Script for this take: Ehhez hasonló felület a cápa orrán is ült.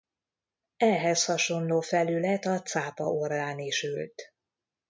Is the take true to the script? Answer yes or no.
yes